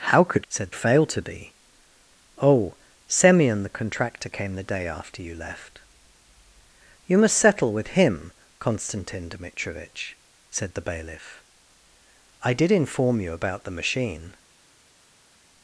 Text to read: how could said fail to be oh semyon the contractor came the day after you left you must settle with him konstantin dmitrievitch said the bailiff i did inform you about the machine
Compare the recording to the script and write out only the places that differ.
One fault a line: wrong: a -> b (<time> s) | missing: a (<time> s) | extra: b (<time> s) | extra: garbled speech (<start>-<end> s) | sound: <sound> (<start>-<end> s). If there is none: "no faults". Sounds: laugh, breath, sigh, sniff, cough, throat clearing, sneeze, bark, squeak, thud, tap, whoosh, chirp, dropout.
no faults